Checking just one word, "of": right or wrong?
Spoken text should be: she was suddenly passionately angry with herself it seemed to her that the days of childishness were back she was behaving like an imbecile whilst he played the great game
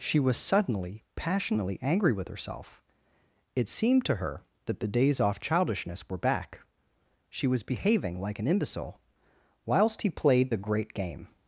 wrong